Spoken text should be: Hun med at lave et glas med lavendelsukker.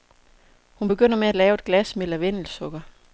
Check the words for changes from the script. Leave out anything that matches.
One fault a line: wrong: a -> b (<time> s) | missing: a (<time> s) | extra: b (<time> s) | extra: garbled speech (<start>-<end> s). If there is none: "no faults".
extra: begynder (0.9 s)